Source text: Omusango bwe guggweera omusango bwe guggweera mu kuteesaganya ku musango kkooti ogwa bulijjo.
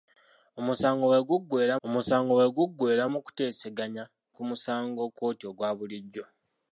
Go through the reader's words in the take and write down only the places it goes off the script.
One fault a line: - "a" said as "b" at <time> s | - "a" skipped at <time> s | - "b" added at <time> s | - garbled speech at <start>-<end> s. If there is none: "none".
none